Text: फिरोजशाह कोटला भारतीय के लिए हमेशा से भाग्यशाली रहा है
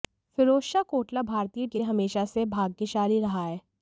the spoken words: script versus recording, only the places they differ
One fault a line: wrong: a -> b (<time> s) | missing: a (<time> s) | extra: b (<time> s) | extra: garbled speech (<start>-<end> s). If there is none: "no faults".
no faults